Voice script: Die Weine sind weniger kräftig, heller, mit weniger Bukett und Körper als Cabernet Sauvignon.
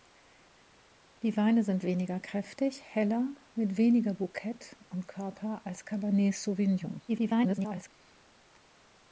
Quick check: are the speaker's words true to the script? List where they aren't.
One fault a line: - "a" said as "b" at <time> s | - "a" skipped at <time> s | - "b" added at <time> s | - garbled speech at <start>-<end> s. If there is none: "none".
- garbled speech at 7.1-7.9 s